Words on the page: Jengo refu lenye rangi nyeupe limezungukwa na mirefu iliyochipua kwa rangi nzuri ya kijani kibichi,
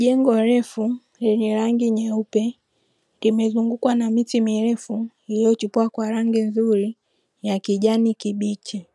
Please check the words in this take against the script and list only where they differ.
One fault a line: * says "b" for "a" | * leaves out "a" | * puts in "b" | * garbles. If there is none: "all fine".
* puts in "miti"